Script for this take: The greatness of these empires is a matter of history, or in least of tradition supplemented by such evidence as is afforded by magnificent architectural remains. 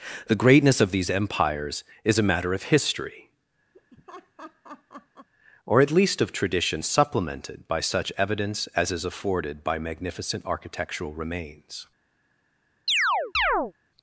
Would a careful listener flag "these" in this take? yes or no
no